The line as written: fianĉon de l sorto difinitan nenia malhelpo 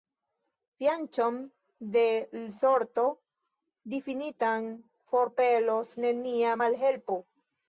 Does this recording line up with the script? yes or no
no